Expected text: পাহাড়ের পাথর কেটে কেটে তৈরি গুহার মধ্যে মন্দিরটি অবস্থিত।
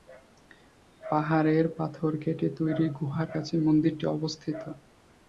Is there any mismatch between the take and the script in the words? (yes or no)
yes